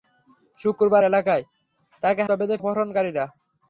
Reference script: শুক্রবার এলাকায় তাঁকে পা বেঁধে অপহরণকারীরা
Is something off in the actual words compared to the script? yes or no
no